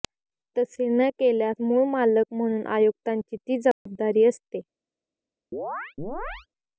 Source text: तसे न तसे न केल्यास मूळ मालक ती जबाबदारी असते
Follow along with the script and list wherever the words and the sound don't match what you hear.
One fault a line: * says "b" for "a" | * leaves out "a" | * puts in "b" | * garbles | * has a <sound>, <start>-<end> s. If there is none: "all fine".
* leaves out "तसे न"
* puts in "म्हणून आयुक्तांची"
* has a dropout, 3.7-3.9 s
* has a chirp, 5.5-6.5 s